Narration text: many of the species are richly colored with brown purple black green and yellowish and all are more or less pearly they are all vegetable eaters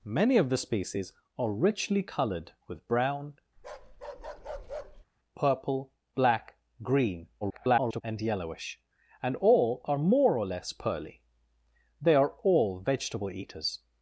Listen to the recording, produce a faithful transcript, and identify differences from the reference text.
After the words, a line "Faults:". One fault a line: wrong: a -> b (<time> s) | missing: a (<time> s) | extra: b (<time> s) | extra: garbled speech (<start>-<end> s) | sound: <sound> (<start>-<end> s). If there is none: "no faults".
many of the species are richly colored with brown purple black green [garbled] and yellowish and all are more or less pearly they are all vegetable eaters
Faults:
sound: bark (3.6-5.1 s)
extra: garbled speech (7.4-8.0 s)